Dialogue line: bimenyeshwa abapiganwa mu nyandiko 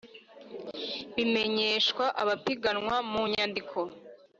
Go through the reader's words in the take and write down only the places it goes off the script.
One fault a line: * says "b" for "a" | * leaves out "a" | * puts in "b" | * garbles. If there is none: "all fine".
all fine